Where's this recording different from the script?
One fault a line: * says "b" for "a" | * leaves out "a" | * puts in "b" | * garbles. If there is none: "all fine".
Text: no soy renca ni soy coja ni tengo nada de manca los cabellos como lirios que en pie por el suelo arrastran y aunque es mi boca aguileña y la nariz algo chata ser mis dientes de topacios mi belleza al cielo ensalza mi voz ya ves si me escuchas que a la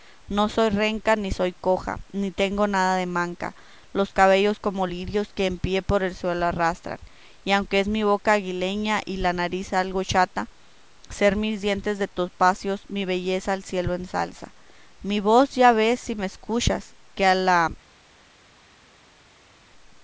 all fine